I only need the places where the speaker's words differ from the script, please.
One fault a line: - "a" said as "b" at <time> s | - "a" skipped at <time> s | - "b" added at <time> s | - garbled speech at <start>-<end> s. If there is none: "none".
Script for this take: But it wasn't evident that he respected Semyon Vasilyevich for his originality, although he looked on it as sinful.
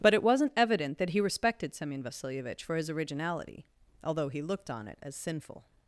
none